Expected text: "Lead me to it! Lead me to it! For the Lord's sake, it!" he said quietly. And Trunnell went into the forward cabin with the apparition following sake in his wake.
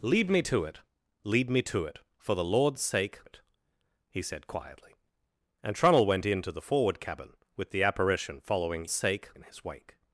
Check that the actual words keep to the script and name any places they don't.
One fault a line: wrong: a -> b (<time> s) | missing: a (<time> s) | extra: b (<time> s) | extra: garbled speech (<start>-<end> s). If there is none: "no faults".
no faults